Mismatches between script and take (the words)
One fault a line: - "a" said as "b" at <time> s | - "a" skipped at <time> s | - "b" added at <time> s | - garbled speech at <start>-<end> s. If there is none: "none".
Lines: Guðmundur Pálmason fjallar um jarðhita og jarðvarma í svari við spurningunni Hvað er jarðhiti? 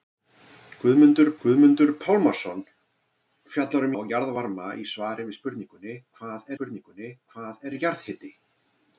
- "guðmundur" added at 1.4 s
- "jarðhita" skipped at 4.0 s
- "spurningunni Hvað" added at 6.5 s